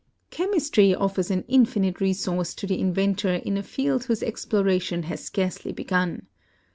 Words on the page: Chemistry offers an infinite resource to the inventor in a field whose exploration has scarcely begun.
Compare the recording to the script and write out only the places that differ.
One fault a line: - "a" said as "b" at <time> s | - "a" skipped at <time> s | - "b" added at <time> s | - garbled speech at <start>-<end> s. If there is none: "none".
none